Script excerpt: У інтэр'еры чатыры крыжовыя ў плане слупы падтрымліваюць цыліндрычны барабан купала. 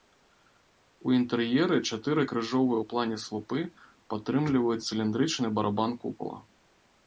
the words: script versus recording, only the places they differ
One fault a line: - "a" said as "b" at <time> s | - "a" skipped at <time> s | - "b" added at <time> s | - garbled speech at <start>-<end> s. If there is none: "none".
none